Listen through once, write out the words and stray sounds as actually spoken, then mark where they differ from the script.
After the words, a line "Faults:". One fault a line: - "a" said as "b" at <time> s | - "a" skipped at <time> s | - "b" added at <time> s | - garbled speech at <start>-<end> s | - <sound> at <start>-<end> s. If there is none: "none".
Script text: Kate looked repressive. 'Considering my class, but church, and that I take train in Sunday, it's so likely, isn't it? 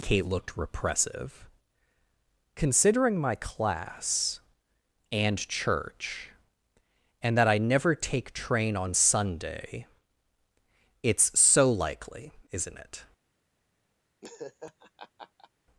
Kate looked repressive. 'Considering my class, and church, and that I never take train on Sunday, it's so likely, isn't it?
Faults:
- "but" said as "and" at 5.1 s
- "never" added at 7.6 s
- "in" said as "on" at 8.8 s
- laugh at 14.2-15.5 s